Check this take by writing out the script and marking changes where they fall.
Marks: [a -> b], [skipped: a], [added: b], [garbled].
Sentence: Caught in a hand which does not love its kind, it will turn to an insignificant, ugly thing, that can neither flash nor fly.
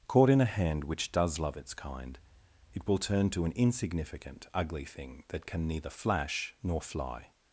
Caught in a hand which does [skipped: not] love its kind, it will turn to an insignificant, ugly thing, that can neither flash nor fly.